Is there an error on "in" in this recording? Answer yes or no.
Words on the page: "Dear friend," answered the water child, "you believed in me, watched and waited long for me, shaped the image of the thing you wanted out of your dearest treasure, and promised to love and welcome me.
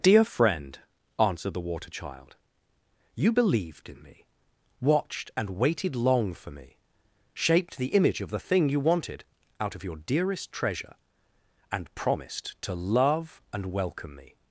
no